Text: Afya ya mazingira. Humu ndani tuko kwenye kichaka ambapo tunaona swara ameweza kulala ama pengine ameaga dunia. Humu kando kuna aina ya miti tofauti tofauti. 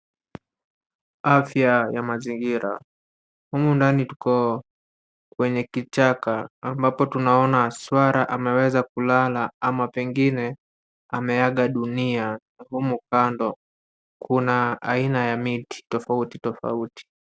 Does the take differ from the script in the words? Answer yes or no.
no